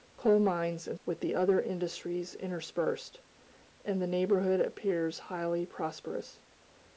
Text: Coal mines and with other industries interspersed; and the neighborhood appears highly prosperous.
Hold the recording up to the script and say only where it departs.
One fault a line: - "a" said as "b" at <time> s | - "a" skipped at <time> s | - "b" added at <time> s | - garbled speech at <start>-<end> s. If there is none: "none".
none